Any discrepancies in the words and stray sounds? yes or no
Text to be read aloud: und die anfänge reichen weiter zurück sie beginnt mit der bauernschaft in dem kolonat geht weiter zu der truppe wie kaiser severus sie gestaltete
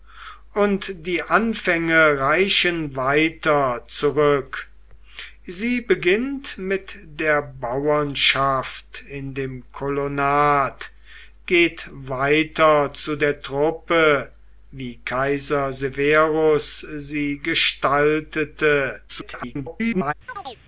yes